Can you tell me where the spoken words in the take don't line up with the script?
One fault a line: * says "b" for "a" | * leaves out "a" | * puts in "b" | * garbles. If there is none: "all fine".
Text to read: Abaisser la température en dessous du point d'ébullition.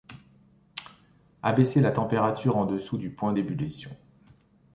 all fine